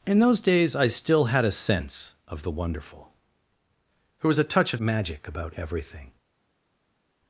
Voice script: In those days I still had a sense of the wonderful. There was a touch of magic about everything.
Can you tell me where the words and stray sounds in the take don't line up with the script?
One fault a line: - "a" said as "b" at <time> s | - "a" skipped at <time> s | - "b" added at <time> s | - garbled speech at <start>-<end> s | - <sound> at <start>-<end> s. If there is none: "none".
none